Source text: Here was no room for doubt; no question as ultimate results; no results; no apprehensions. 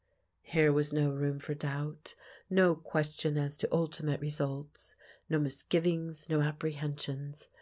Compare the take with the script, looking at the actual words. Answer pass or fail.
fail